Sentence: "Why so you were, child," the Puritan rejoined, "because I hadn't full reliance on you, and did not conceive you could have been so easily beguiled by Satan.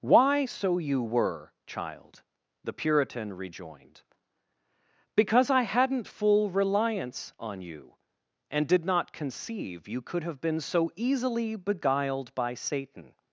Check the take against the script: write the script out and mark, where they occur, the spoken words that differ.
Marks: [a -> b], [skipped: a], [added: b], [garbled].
"Why so you were, child," the Puritan rejoined, "because I hadn't full reliance on you, and did not conceive you could have been so easily beguiled by Satan.